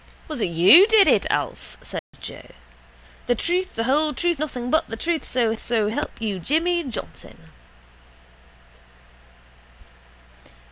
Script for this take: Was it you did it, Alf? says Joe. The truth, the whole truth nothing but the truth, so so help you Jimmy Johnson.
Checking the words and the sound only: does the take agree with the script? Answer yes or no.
no